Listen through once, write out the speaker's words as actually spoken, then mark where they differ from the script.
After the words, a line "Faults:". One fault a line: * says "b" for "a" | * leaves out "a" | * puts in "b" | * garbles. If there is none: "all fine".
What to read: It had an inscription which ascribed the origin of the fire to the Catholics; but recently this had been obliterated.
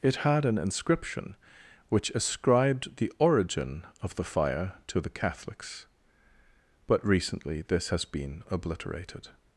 It had an inscription which ascribed the origin of the fire to the Catholics; but recently this has been obliterated.
Faults:
* says "has" for "had"